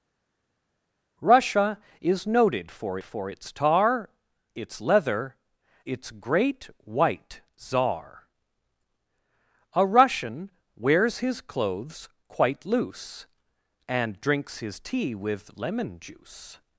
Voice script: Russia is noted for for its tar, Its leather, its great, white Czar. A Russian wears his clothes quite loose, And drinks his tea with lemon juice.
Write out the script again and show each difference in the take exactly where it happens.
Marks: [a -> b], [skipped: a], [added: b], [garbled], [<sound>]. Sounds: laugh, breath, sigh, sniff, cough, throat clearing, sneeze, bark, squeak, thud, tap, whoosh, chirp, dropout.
Russia is noted for for its tar, Its leather, its great, white Czar. A Russian wears his clothes quite loose, And drinks his tea with lemon juice.